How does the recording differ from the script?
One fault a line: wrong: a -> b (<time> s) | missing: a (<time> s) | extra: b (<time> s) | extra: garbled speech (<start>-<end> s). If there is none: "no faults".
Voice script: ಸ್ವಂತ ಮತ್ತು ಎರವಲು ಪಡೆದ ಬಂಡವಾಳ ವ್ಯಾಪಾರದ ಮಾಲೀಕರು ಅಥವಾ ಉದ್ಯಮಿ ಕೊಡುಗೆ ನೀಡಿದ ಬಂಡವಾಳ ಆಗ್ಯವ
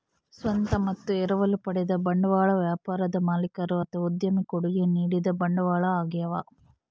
no faults